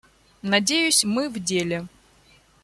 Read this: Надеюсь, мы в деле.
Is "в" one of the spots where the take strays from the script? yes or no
no